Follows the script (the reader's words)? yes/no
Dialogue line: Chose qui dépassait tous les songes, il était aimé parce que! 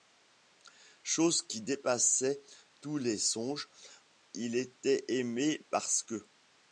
yes